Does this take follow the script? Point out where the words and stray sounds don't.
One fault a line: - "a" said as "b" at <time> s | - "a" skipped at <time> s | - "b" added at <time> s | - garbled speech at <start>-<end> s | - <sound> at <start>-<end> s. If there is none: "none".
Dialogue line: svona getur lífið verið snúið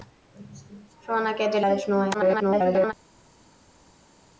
- "lífið" skipped at 1.6 s
- garbled speech at 2.1-2.9 s